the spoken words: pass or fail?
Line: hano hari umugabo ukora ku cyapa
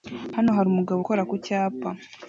pass